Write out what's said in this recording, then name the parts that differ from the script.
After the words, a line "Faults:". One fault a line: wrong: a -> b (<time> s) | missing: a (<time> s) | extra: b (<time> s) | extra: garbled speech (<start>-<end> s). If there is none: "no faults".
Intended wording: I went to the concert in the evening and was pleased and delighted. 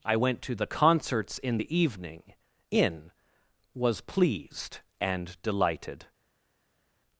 I went to the concerts in the evening in was pleased and delighted.
Faults:
wrong: concert -> concerts (0.7 s)
wrong: and -> in (2.7 s)